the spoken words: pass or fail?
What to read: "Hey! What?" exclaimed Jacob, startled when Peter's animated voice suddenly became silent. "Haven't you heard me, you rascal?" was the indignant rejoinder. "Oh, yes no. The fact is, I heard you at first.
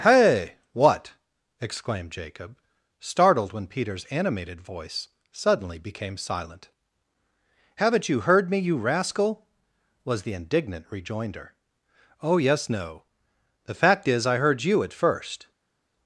pass